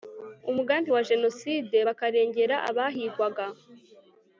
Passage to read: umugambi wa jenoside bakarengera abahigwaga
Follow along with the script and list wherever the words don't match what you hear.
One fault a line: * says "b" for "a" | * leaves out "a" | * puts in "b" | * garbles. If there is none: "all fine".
all fine